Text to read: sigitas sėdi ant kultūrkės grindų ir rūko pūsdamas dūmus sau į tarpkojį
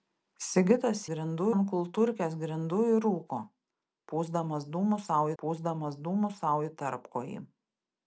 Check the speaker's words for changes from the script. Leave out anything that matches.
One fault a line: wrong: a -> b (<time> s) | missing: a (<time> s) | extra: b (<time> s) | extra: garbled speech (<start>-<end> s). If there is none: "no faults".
wrong: sėdi -> grindų (1.1 s)
extra: pūsdamas dūmus sau (5.4 s)